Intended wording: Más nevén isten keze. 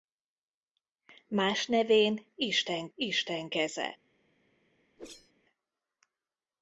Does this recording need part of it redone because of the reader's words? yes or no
yes